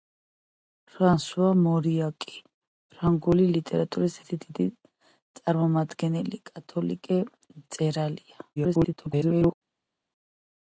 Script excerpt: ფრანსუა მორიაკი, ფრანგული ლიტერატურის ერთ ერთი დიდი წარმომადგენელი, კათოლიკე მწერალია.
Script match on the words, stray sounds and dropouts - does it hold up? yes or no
no